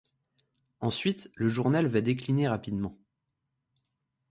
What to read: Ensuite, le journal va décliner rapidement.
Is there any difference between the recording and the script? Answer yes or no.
no